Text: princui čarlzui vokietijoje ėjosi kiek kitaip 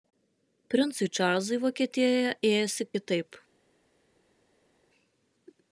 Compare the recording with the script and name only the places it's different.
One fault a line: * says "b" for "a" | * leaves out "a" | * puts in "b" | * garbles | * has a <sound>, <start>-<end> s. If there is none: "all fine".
* leaves out "kiek"